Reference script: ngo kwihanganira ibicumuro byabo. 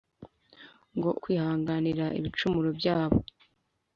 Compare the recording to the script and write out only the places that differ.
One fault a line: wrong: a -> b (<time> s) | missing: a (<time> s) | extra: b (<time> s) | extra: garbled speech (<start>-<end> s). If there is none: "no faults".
no faults